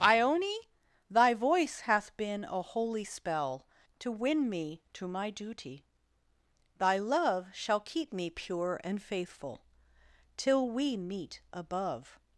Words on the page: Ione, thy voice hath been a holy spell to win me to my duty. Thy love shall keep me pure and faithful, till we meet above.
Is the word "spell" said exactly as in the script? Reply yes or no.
yes